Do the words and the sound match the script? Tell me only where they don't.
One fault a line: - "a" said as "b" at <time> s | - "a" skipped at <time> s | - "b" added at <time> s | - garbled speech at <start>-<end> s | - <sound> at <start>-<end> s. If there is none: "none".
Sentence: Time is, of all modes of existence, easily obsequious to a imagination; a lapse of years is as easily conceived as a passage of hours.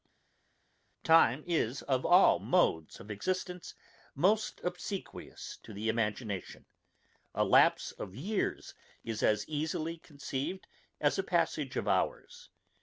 - "easily" said as "most" at 4.1 s
- "a" said as "the" at 5.7 s